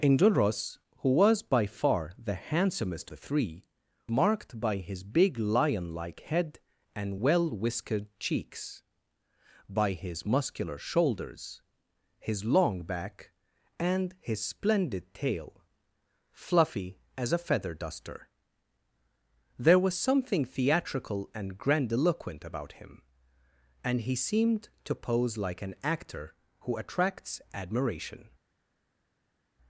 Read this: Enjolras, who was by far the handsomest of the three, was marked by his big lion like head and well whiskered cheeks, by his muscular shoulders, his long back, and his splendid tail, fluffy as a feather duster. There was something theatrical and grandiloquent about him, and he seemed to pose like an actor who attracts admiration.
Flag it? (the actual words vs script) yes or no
yes